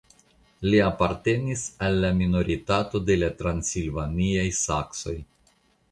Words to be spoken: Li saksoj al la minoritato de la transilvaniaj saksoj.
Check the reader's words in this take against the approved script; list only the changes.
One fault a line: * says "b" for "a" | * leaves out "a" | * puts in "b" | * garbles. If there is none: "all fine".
* says "apartenis" for "saksoj"